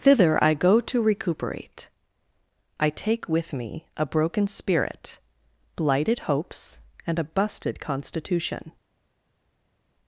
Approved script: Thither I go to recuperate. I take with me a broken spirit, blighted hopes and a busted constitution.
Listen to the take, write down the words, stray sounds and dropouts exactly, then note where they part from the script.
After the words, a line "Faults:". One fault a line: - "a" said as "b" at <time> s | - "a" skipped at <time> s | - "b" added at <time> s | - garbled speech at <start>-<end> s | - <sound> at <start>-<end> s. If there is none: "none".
Thither I go to recuperate. I take with me a broken spirit, blighted hopes and a busted constitution.
Faults:
none